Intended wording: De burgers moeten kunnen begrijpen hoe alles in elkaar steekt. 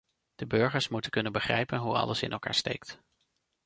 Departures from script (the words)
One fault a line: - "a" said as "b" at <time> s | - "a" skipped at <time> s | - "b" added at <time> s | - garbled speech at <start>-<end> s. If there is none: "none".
none